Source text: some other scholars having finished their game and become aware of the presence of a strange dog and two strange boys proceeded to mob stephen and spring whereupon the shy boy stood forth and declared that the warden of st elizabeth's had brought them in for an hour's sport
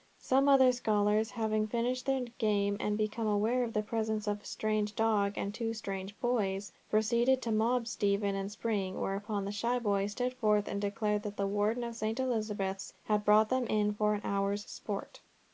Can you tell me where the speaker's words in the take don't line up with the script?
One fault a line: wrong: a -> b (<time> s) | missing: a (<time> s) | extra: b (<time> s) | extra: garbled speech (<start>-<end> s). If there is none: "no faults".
no faults